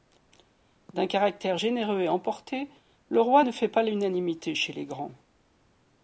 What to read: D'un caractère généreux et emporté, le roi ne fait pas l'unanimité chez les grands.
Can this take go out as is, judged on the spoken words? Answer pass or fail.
pass